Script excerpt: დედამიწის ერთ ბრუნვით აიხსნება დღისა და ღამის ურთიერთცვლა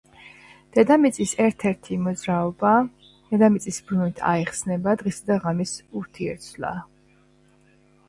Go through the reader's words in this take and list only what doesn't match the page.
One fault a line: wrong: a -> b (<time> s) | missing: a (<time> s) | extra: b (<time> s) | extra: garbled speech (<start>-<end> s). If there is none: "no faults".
extra: ერთი მოძრაობა დედამიწის (1.7 s)